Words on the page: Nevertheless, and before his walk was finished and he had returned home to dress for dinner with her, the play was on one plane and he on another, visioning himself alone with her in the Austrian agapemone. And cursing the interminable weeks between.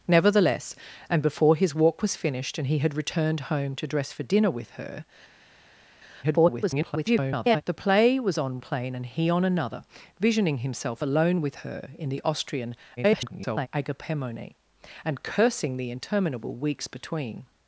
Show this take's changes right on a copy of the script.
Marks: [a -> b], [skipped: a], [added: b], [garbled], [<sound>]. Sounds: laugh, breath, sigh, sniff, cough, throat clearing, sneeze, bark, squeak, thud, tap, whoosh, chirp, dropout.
Nevertheless, and before his walk was finished and he had returned home to dress for dinner with her, [garbled] the play was on [skipped: one] plane and he on another, visioning himself alone with her in the Austrian [garbled] agapemone. And cursing the interminable weeks between.